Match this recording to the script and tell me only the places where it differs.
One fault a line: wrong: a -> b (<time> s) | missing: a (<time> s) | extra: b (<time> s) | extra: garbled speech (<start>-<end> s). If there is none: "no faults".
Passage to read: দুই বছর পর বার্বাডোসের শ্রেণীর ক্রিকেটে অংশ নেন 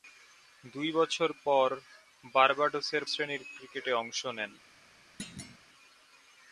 no faults